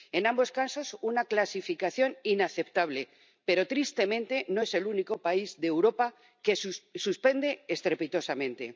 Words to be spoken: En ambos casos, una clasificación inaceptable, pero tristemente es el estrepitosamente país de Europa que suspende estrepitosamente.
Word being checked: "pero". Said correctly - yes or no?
yes